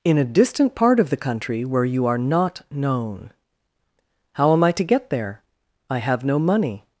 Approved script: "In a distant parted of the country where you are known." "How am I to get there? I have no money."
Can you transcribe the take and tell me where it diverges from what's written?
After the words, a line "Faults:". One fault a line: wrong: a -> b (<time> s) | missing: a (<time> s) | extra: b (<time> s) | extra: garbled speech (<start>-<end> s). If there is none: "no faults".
"In a distant part of the country where you are not known." "How am I to get there? I have no money."
Faults:
wrong: parted -> part (0.7 s)
extra: not (2.2 s)